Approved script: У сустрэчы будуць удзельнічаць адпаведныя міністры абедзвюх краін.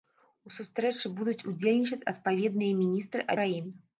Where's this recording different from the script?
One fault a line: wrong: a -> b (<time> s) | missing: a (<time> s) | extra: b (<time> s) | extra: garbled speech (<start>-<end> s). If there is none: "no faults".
missing: абедзвюх (3.3 s)